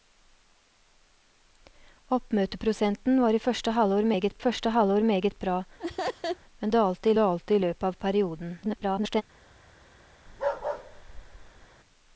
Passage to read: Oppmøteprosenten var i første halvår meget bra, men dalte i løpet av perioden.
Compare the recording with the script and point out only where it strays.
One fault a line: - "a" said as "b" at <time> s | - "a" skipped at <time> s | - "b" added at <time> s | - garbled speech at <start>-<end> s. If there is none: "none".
- "første halvår meget" added at 4.4 s
- "dalte" added at 7.2 s
- garbled speech at 8.6-9.2 s